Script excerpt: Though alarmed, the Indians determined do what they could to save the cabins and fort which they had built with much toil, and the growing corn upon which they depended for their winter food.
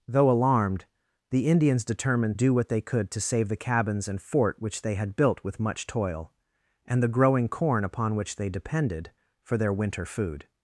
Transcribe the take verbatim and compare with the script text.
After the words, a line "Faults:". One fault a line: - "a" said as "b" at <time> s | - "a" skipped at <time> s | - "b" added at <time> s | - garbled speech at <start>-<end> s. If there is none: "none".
Though alarmed, the Indians determined do what they could to save the cabins and fort which they had built with much toil, and the growing corn upon which they depended for their winter food.
Faults:
none